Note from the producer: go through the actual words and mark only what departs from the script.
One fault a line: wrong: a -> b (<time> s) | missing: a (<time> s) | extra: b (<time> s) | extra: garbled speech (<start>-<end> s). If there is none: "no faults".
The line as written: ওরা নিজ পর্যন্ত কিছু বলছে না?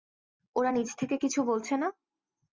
wrong: পর্যন্ত -> থেকে (1.0 s)